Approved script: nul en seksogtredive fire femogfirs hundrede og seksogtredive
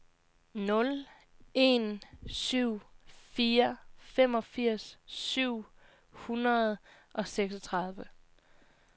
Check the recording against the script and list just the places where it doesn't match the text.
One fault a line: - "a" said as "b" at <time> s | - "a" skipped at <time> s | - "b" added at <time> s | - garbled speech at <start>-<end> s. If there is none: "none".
- "seksogtredive" said as "syv" at 2.3 s
- "syv" added at 5.1 s